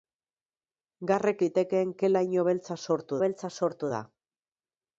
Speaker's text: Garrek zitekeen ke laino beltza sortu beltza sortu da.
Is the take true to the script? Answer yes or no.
yes